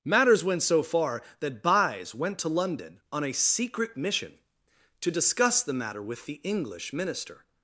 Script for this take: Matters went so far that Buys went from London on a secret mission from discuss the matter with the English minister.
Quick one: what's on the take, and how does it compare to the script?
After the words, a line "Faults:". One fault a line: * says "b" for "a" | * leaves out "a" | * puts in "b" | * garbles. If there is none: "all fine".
Matters went so far that Buys went to London on a secret mission to discuss the matter with the English minister.
Faults:
* says "to" for "from"
* says "to" for "from"